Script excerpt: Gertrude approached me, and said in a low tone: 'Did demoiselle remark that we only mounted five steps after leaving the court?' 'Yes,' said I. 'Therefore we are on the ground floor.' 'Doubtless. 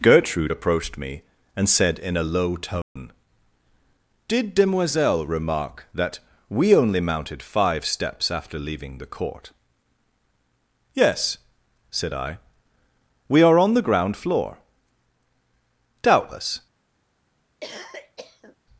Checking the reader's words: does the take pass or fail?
fail